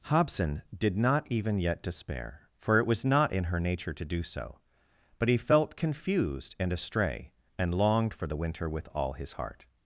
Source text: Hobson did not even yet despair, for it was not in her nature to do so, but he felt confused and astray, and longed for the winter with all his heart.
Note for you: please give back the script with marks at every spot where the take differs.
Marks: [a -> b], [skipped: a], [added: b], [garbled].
Hobson did not even yet despair, for it was not in her nature to do so, but he felt confused and astray, and longed for the winter with all his heart.